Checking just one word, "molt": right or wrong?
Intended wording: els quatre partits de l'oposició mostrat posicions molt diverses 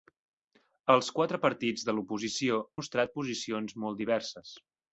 right